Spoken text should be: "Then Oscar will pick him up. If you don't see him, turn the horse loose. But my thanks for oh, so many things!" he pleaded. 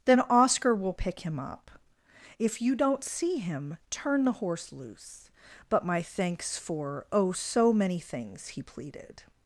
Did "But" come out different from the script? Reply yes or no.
no